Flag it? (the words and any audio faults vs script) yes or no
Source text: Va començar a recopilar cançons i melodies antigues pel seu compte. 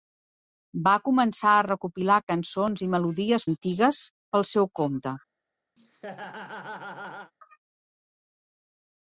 yes